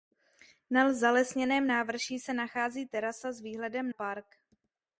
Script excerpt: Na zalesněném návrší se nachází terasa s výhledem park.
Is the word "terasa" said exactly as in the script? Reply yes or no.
yes